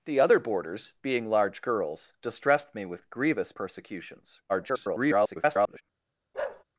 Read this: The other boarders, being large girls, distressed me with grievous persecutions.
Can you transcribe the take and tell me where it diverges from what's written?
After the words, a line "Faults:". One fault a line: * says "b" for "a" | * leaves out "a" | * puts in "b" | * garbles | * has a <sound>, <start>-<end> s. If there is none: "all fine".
The other boarders, being large girls, distressed me with grievous persecutions. [garbled]
Faults:
* garbles
* has a bark, 6.3-6.6 s